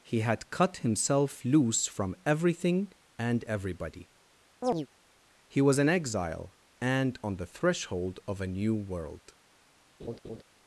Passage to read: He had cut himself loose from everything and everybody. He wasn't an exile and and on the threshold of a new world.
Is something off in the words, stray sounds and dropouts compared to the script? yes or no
yes